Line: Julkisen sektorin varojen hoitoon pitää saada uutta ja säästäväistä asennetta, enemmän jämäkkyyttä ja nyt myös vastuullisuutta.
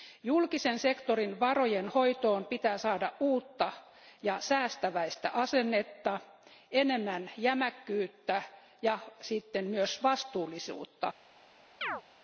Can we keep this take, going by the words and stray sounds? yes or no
no